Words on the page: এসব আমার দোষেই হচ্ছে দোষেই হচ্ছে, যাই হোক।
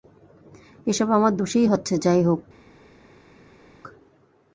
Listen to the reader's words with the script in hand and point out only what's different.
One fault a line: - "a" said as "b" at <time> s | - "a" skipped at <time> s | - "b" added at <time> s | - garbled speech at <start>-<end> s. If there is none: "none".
- "দোষেই হচ্ছে" skipped at 1.9 s